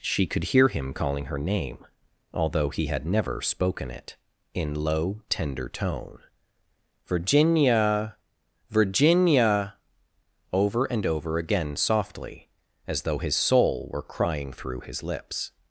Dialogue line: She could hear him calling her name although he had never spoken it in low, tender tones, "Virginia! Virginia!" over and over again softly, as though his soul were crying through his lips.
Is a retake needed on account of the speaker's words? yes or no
yes